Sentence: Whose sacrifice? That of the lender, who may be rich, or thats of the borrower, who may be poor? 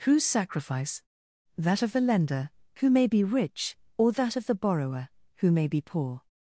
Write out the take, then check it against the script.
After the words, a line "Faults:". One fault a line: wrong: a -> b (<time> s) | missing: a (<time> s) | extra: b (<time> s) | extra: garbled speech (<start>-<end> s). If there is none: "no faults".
Whose sacrifice? That of the lender, who may be rich, or that of the borrower, who may be poor?
Faults:
wrong: thats -> that (4.1 s)